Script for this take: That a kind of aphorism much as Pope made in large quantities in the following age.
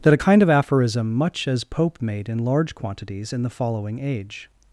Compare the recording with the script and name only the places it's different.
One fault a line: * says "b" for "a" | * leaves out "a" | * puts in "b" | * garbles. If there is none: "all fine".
all fine